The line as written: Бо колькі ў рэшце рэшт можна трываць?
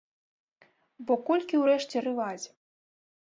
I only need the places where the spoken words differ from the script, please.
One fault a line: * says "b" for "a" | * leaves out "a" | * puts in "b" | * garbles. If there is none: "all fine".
* leaves out "рэшт можна"